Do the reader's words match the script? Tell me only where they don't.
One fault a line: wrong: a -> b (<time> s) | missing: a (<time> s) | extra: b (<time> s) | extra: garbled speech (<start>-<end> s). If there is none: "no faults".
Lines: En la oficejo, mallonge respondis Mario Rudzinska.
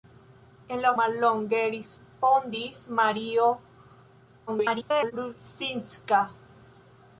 missing: oficejo (0.9 s)
extra: garbled speech (4.5-5.1 s)